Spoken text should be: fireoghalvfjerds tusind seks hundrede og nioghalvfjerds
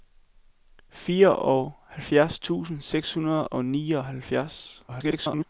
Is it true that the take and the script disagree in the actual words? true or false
true